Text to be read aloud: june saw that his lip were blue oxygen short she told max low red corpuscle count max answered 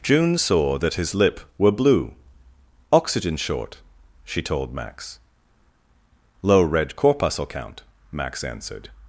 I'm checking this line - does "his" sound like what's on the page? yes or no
yes